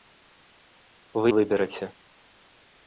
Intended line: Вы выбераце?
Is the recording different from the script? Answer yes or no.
no